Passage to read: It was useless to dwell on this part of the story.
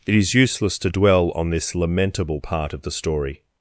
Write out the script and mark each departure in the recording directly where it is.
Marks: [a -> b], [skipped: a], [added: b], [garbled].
It [was -> is] useless to dwell on this [added: lamentable] part of the story.